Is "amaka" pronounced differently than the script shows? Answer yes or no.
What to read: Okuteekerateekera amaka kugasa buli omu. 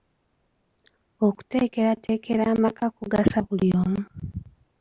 no